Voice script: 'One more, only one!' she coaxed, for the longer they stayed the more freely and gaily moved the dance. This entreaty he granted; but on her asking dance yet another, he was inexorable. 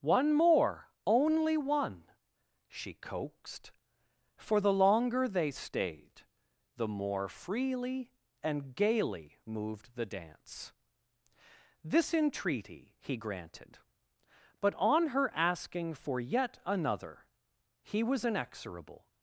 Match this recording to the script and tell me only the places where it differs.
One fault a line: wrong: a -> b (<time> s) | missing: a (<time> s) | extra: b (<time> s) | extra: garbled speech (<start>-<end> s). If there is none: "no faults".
wrong: dance -> for (15.9 s)